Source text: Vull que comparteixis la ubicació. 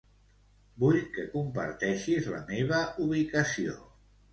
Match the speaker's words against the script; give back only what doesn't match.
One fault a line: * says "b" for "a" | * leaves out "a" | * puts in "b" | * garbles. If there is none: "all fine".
* puts in "meva"